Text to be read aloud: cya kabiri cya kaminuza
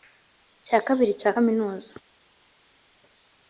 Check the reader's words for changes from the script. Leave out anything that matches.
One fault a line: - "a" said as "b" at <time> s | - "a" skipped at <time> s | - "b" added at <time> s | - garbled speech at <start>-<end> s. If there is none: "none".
none